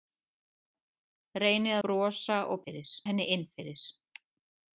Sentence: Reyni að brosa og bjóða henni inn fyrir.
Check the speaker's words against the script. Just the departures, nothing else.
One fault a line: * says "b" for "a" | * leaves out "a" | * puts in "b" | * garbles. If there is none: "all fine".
* leaves out "að"
* says "fyrir" for "bjóða"